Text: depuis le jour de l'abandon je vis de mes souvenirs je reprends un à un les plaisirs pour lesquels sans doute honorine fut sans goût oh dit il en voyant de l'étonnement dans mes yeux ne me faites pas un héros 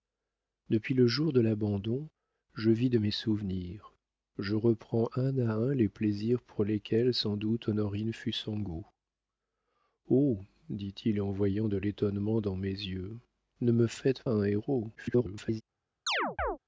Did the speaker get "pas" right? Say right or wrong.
wrong